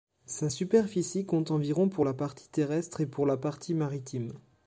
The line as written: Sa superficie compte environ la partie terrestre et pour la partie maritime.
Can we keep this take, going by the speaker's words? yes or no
no